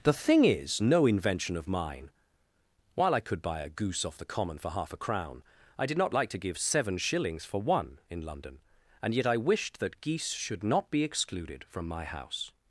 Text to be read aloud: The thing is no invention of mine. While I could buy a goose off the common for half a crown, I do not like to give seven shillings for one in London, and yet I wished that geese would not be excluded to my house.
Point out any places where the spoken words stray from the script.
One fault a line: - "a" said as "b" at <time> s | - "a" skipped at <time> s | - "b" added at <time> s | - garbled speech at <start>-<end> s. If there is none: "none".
- "do" said as "did" at 5.8 s
- "would" said as "should" at 10.3 s
- "to" said as "from" at 11.7 s